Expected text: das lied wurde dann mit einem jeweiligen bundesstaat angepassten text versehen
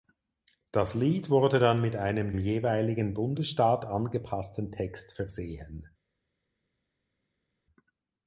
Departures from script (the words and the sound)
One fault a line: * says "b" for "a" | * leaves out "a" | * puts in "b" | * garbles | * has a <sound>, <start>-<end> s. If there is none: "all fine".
all fine